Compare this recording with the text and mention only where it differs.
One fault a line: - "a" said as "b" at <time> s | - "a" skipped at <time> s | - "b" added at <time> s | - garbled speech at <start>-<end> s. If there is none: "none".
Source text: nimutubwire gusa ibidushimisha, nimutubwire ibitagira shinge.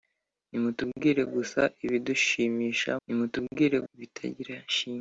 none